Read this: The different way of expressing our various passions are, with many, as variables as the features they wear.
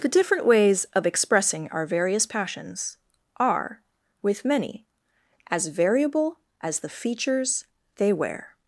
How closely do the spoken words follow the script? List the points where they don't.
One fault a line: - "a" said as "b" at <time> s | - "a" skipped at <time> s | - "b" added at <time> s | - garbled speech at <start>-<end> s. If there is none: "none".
- "way" said as "ways" at 0.5 s
- "variables" said as "variable" at 5.7 s